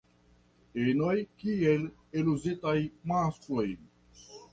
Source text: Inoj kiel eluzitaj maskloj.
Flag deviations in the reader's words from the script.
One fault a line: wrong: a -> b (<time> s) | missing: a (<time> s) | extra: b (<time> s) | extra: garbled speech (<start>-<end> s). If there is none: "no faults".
no faults